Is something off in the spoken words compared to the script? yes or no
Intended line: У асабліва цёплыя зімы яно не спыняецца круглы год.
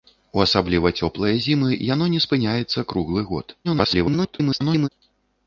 yes